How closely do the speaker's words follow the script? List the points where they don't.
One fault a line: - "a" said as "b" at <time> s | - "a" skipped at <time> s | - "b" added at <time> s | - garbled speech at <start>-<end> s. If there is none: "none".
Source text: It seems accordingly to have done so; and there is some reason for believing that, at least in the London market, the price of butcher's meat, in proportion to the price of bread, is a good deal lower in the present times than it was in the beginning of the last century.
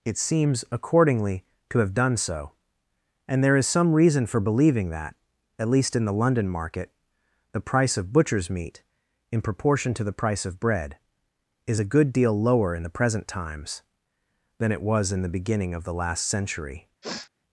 none